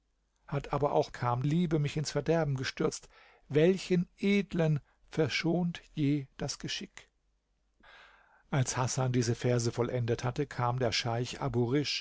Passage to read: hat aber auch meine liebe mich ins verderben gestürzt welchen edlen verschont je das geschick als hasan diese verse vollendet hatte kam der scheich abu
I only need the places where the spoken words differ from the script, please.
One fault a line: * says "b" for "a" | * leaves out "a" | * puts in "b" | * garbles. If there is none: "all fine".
* says "kam" for "meine"